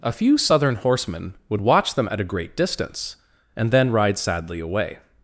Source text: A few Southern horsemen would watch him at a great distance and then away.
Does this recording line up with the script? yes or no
no